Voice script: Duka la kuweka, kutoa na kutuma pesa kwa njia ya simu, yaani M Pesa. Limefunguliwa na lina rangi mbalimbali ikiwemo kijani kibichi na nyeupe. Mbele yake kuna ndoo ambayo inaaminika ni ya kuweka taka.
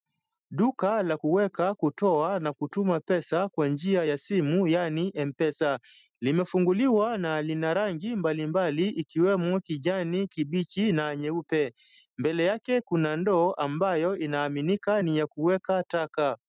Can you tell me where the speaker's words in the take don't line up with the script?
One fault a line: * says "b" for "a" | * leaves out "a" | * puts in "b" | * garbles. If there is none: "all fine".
all fine